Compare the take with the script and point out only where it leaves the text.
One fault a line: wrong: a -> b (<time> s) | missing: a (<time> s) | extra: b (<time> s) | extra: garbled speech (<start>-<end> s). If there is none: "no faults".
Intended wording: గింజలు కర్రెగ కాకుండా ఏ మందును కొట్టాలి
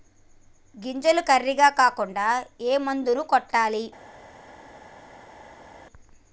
no faults